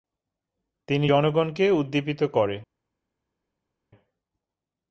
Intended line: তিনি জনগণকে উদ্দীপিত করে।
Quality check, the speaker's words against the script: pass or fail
pass